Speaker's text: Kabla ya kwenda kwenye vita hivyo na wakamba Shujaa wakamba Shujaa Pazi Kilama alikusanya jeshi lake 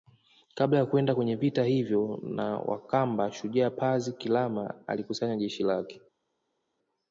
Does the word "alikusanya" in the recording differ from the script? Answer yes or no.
no